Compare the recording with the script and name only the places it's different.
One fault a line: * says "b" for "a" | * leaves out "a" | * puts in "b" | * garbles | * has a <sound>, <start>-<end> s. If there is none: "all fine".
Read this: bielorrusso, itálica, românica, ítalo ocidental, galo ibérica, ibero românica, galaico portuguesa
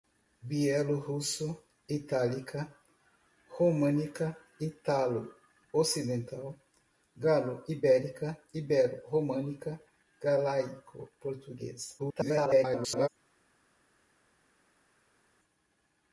* garbles